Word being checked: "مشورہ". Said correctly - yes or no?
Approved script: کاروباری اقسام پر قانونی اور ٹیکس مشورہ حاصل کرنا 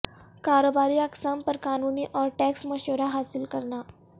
yes